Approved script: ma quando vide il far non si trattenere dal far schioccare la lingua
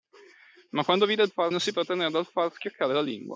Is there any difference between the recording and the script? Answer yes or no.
no